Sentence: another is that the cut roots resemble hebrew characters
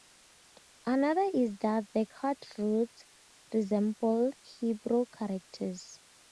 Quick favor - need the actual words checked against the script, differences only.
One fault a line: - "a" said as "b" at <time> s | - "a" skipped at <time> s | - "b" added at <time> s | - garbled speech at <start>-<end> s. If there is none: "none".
none